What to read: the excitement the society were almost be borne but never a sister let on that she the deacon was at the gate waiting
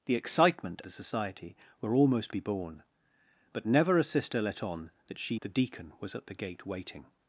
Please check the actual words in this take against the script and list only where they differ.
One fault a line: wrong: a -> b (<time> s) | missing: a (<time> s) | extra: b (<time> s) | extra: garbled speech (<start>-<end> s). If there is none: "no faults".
no faults